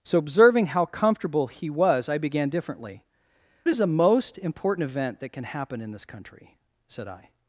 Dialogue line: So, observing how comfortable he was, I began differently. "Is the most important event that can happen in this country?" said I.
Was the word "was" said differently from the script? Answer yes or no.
no